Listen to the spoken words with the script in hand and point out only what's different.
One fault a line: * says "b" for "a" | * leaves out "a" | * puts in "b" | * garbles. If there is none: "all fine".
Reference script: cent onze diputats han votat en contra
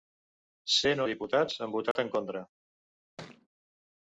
* leaves out "onze"